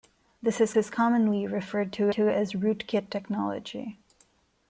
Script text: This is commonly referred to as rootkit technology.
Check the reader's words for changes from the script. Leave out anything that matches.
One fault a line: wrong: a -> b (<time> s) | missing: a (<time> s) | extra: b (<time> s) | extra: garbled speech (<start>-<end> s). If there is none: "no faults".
extra: is (0.7 s)
extra: to (2.1 s)